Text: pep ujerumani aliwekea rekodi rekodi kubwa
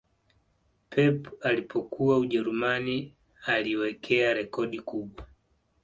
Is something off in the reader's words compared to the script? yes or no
yes